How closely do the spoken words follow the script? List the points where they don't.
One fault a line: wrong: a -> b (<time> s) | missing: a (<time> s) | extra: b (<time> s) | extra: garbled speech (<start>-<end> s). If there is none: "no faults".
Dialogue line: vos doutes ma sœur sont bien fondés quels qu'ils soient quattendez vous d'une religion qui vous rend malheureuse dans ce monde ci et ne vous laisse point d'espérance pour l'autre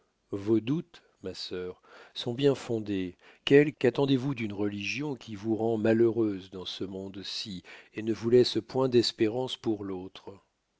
missing: qu'ils soient (3.7 s)